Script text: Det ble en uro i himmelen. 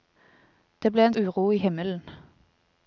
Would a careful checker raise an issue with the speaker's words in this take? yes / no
no